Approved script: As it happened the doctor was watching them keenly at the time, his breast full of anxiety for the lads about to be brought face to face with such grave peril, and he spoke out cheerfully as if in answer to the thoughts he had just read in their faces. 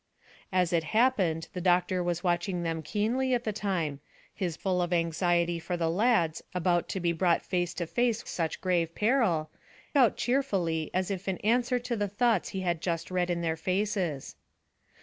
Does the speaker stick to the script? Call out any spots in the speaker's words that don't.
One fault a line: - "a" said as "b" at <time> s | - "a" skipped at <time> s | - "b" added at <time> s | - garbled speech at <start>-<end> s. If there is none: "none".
- "breast" skipped at 4.6 s
- "with" skipped at 8.3 s
- "and he spoke" skipped at 9.5 s